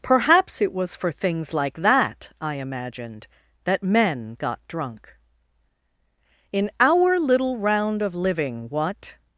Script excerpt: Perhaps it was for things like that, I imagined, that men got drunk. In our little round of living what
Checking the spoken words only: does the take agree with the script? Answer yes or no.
yes